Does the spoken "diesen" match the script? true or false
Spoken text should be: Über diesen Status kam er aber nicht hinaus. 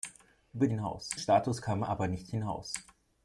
false